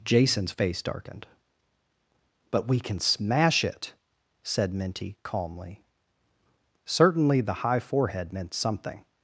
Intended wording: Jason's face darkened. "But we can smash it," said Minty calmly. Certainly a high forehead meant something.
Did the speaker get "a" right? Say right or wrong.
wrong